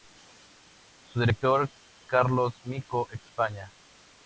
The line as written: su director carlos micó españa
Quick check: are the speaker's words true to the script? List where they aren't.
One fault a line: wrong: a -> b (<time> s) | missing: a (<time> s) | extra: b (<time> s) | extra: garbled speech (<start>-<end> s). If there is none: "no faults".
no faults